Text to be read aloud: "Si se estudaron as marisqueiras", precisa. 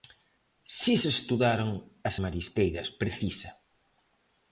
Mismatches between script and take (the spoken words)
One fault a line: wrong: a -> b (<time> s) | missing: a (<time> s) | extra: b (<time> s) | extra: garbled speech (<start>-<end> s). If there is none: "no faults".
no faults